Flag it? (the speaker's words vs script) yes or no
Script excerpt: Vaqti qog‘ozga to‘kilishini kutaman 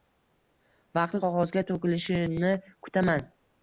no